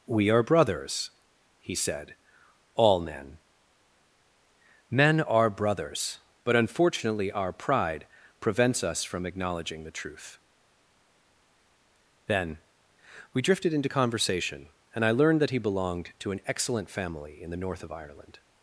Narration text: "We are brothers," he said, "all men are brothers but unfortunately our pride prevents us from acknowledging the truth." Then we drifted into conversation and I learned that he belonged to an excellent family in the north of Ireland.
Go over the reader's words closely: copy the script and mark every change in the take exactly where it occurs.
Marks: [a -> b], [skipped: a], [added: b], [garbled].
"We are brothers," he said, "all men [added: men] are brothers but unfortunately our pride prevents us from acknowledging the truth." Then we drifted into conversation and I learned that he belonged to an excellent family in the north of Ireland.